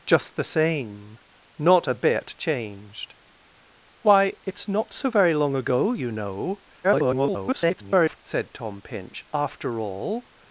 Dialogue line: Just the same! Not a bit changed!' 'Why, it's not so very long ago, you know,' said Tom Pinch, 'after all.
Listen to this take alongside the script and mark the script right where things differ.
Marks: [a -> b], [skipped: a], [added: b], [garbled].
Just the same! Not a bit changed!' 'Why, it's not so very long ago, you know,' [garbled] said Tom Pinch, 'after all.